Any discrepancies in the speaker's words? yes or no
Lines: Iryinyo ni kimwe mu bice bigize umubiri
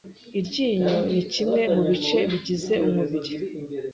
no